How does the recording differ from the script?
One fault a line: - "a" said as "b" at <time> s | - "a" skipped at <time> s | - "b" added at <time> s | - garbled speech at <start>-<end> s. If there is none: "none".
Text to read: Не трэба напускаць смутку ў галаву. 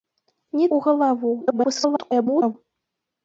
- "трэба напускаць смутку" skipped at 0.7 s
- garbled speech at 1.4-2.5 s